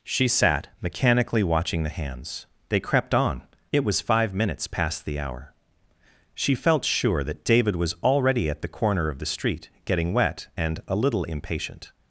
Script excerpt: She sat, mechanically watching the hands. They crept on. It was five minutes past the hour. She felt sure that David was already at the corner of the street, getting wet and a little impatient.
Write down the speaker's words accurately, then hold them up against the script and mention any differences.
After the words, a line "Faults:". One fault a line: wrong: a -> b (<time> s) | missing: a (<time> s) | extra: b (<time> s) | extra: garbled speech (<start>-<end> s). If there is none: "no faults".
She sat, mechanically watching the hands. They crept on. It was five minutes past the hour. She felt sure that David was already at the corner of the street, getting wet and a little impatient.
Faults:
no faults